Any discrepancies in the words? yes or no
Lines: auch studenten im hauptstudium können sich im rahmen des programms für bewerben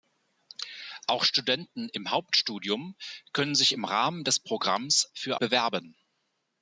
no